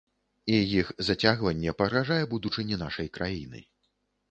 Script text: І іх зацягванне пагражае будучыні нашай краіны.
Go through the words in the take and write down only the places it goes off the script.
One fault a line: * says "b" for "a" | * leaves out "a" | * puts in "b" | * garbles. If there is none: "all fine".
all fine